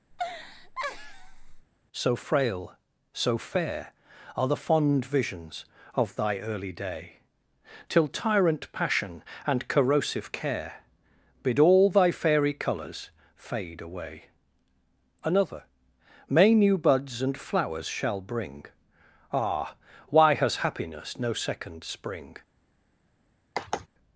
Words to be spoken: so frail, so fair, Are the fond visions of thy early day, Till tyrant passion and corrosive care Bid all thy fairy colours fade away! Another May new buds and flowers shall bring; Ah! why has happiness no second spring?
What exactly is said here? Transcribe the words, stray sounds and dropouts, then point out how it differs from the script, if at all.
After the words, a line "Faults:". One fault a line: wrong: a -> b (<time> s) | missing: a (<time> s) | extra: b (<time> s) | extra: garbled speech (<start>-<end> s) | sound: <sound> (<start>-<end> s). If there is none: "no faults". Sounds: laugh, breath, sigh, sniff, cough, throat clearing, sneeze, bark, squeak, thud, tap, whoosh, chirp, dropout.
so frail, so fair, Are the fond visions of thy early day, Till tyrant passion and corrosive care Bid all thy fairy colours fade away! Another May new buds and flowers shall bring; Ah! why has happiness no second spring?
Faults:
sound: laugh (0.1-1.7 s)
sound: sigh (23.6-23.9 s)